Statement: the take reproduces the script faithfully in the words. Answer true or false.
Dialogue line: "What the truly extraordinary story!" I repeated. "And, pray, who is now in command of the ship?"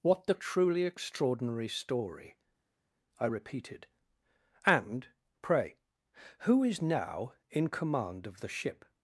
true